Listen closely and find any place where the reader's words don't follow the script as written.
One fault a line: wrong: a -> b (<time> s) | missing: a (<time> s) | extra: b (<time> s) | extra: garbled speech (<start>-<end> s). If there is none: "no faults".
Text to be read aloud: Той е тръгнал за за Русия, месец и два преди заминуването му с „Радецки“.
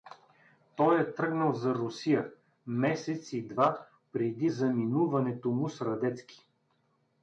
missing: за (1.8 s)